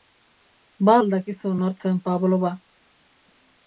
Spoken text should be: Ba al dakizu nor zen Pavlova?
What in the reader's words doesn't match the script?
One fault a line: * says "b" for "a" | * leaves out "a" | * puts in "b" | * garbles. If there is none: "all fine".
all fine